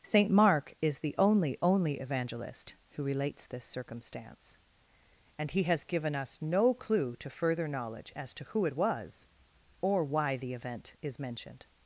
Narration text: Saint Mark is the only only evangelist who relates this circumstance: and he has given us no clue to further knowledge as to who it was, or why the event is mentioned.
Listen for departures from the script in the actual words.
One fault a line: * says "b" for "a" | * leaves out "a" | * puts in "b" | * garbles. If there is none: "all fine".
all fine